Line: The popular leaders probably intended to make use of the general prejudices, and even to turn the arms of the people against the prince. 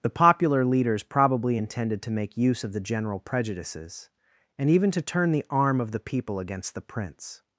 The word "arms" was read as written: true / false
false